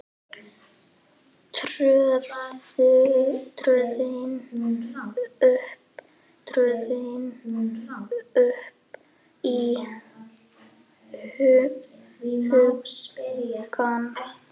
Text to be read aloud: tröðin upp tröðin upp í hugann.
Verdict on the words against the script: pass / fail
pass